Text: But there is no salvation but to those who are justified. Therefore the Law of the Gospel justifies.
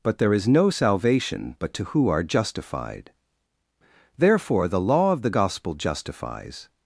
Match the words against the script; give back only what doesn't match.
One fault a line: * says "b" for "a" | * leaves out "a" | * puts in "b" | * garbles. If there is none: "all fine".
* leaves out "those"